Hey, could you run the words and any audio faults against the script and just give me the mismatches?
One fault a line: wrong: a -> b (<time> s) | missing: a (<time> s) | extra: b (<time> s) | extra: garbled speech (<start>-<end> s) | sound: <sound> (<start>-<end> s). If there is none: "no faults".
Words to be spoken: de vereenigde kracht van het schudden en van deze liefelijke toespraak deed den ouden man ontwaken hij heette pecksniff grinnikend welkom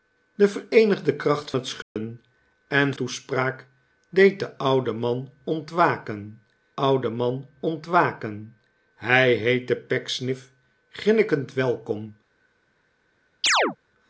missing: van (1.5 s)
sound: dropout (1.8-2.0 s)
wrong: van deze liefelijke toespraak deed den -> toespraak deed den ouden man ontwaken (2.9 s)
sound: chirp (13.4-13.8 s)